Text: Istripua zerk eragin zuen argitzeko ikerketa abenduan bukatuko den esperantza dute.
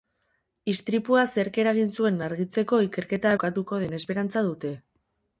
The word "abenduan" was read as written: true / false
false